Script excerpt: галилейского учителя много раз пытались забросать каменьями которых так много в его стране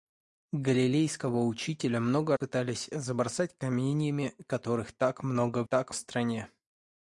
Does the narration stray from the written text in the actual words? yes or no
yes